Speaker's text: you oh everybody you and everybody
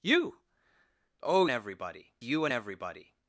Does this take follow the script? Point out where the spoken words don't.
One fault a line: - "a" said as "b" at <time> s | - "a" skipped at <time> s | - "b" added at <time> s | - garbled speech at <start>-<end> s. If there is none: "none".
none